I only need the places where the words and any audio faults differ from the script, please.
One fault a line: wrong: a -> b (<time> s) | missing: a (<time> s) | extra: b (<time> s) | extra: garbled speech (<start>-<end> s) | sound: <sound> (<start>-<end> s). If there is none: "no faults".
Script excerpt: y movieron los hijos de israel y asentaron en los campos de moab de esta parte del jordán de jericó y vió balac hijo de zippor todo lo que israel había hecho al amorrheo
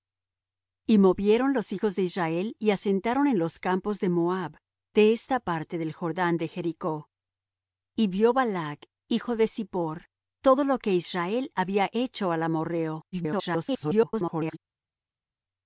extra: garbled speech (13.1-14.6 s)